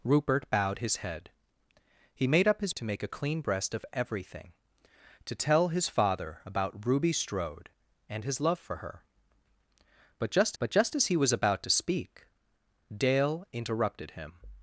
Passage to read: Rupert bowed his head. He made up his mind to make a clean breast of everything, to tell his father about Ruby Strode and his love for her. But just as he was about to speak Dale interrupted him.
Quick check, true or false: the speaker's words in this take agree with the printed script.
false